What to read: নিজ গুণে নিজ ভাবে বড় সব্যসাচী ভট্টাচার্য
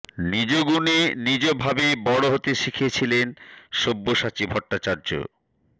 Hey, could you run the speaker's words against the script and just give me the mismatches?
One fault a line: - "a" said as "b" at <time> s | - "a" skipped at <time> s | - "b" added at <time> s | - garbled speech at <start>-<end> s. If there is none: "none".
- "হতে শিখিয়েছিলেন" added at 2.3 s